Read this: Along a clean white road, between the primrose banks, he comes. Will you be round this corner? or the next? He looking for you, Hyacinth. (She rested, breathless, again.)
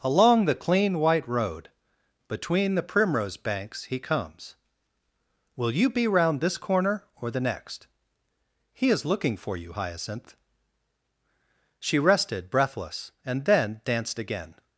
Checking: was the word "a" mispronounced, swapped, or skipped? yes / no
yes